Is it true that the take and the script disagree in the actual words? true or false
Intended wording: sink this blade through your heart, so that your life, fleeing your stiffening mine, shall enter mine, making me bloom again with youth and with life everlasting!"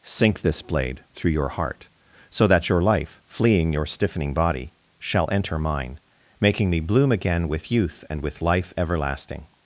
true